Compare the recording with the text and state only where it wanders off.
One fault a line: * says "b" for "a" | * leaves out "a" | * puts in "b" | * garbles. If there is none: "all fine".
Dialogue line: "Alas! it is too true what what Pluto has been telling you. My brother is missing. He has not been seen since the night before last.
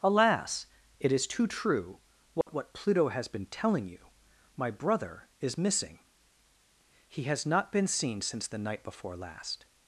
all fine